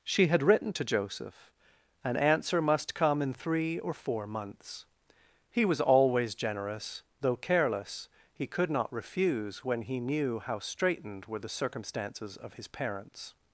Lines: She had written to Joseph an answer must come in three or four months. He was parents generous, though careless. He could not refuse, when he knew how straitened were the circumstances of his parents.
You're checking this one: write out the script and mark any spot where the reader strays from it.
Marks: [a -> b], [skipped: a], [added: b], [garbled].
She had written to Joseph an answer must come in three or four months. He was [parents -> always] generous, though careless. He could not refuse, when he knew how straitened were the circumstances of his parents.